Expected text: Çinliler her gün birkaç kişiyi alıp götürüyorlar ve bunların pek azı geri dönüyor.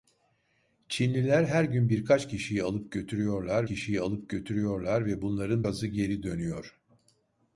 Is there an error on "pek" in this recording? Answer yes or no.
yes